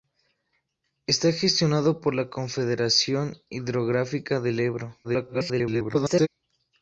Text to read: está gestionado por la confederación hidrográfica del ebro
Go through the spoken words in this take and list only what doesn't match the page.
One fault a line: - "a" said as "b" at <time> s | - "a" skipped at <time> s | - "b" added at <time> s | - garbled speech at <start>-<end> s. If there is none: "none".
- garbled speech at 5.0-6.3 s